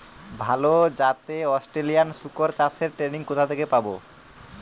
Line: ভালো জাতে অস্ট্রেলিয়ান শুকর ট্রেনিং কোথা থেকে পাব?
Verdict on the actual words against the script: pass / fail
fail